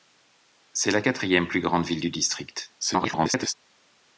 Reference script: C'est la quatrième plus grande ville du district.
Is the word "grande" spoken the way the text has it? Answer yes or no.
yes